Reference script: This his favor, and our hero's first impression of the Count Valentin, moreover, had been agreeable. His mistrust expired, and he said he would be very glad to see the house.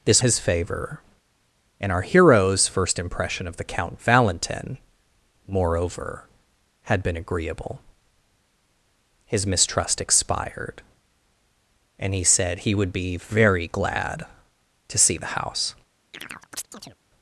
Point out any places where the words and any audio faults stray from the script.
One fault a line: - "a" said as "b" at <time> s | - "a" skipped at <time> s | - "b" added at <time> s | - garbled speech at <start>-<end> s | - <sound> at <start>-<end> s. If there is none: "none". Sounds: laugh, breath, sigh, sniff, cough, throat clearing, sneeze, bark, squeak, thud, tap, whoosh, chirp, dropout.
- chirp at 16.1-17.0 s